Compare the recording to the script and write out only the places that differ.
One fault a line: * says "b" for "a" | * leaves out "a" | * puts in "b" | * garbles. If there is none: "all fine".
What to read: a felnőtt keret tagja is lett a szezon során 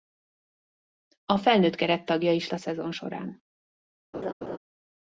* leaves out "lett"